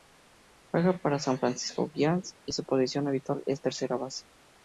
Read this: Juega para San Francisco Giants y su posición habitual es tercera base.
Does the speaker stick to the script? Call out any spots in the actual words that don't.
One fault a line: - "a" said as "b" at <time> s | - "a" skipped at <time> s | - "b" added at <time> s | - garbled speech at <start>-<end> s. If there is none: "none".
none